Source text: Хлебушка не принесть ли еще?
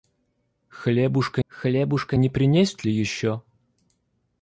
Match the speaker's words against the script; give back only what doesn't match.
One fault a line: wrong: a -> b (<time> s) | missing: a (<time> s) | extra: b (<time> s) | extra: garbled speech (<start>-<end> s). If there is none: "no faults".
extra: хлебушка (1.5 s)